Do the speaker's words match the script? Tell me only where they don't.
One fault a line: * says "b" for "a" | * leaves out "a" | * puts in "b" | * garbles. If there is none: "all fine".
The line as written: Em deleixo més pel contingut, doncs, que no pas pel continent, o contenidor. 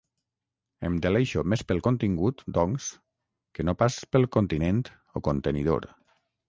all fine